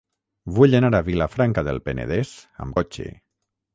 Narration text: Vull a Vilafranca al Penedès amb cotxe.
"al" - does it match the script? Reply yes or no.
no